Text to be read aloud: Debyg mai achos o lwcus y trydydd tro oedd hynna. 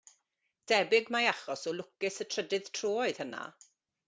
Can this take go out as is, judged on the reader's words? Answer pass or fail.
pass